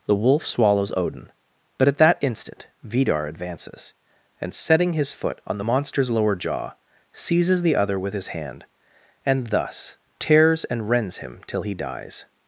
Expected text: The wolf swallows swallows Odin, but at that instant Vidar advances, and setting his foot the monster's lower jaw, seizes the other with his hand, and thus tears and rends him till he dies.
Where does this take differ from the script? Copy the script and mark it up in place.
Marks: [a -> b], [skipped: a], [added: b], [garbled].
The wolf swallows [skipped: swallows] Odin, but at that instant Vidar advances, and setting his foot [added: on] the monster's lower jaw, seizes the other with his hand, and thus tears and rends him till he dies.